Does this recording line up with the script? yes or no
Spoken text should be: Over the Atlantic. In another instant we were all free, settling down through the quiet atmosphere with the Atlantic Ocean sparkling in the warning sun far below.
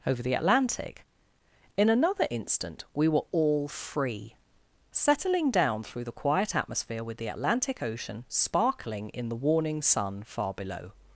yes